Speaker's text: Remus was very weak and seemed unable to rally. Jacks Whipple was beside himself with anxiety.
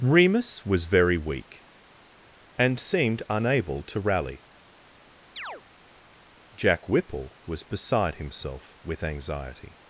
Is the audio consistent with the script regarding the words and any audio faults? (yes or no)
no